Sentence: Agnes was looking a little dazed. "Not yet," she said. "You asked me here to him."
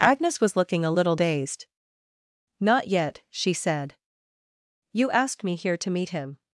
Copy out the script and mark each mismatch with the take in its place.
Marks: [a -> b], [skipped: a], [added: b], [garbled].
Agnes was looking a little dazed. "Not yet," she said. "You asked me here to [added: meet] him."